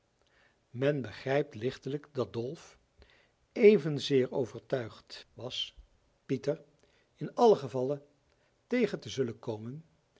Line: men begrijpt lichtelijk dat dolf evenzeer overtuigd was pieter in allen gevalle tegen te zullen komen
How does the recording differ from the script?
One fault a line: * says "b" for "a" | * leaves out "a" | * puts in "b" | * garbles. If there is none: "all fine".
all fine